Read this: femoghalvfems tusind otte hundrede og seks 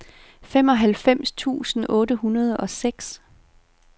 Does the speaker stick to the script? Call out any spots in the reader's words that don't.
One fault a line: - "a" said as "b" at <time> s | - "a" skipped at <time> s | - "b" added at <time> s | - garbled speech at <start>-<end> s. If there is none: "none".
none